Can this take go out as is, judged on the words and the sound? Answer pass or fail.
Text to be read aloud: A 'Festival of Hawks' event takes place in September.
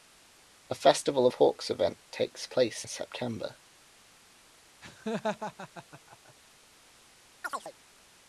fail